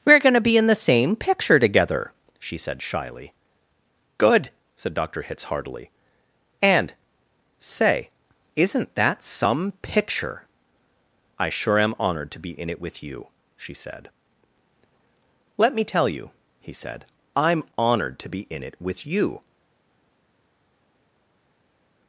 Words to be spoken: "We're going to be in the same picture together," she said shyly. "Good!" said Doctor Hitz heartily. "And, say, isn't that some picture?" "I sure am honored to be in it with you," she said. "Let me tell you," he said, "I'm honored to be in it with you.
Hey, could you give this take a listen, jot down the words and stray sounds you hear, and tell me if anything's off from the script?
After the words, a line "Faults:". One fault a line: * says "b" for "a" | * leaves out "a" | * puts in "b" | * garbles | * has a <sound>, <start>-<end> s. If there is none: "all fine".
"We're going to be in the same picture together," she said shyly. "Good!" said Doctor Hitz heartily. "And, say, isn't that some picture?" "I sure am honored to be in it with you," she said. "Let me tell you," he said, "I'm honored to be in it with you.
Faults:
all fine